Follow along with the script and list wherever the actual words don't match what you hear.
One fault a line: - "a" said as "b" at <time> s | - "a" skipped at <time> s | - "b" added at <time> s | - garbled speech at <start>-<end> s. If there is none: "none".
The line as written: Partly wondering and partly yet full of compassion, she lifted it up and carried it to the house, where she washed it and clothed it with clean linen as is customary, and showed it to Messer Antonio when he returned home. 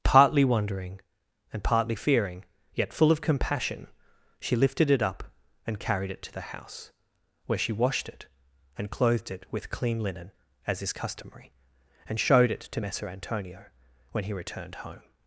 - "fearing" added at 1.9 s